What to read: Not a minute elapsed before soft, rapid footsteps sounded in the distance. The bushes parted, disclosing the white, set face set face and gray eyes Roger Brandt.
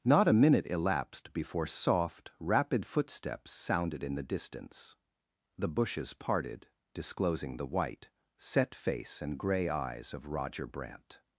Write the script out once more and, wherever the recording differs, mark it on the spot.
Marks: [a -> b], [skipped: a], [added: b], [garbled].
Not a minute elapsed before soft, rapid footsteps sounded in the distance. The bushes parted, disclosing the white, set face [skipped: set face] and gray eyes [added: of] Roger Brandt.